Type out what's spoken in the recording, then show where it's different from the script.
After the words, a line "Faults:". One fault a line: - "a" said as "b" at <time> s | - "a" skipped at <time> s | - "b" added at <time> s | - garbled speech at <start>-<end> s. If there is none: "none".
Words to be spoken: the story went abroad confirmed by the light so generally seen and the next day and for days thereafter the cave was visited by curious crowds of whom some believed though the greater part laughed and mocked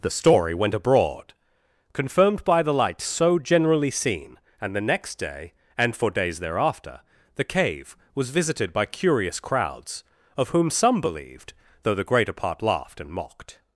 the story went abroad confirmed by the light so generally seen and the next day and for days thereafter the cave was visited by curious crowds of whom some believed though the greater part laughed and mocked
Faults:
none